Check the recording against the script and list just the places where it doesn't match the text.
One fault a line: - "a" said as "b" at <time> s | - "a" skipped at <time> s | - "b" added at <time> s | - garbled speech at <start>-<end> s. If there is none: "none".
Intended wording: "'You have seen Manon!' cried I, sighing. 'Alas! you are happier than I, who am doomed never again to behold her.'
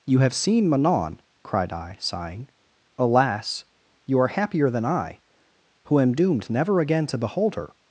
none